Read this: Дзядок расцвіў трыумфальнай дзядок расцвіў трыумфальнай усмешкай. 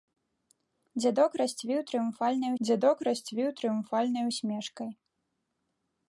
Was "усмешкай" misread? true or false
false